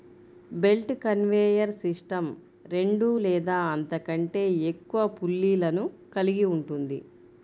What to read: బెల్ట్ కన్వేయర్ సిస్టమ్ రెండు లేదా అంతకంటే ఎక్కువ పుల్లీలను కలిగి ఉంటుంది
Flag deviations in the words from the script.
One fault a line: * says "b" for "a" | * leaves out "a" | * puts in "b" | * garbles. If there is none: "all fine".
all fine